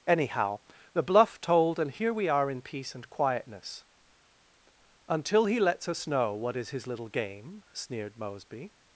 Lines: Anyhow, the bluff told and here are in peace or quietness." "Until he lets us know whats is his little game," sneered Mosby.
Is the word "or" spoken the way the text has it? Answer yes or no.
no